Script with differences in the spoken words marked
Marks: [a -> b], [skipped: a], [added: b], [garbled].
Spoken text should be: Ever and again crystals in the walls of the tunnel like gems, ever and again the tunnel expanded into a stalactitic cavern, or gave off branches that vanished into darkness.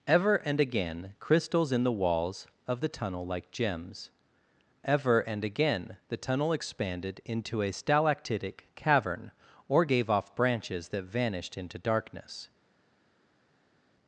Ever and again crystals in the walls of the tunnel like gems, ever and again the tunnel expanded into a stalactitic cavern, or gave off branches that vanished into darkness.